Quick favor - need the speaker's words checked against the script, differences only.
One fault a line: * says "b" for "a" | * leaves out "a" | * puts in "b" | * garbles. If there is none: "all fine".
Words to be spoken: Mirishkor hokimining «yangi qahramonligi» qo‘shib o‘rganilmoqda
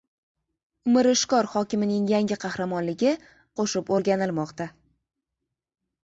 all fine